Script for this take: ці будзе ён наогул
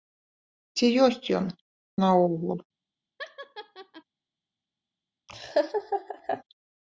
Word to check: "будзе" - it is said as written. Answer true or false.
false